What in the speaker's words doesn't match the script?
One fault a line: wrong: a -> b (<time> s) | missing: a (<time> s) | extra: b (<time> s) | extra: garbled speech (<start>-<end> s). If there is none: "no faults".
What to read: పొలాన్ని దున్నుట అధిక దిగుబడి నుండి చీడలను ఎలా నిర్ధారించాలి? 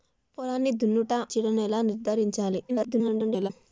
missing: అధిక దిగుబడి నుండి (1.1 s)
extra: garbled speech (2.7-3.5 s)